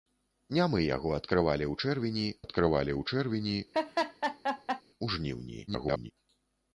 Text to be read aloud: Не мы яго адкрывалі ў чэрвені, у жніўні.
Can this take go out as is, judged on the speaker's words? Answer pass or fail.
fail